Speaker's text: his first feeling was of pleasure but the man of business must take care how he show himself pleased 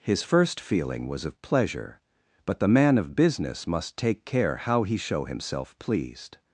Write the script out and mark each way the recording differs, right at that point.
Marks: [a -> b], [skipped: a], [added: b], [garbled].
his first feeling was of pleasure but the man of business must take care how he show himself pleased